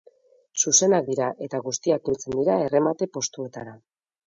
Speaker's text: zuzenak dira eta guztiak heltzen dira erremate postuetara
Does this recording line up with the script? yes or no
yes